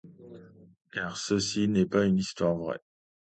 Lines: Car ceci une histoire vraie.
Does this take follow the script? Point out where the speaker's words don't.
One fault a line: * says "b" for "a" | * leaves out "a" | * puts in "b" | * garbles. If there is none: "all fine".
* puts in "n'est pas"